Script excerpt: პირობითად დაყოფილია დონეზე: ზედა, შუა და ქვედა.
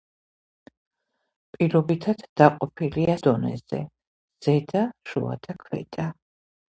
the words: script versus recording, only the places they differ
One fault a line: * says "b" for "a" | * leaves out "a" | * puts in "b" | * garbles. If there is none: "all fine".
all fine